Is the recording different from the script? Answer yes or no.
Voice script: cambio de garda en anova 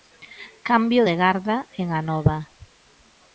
no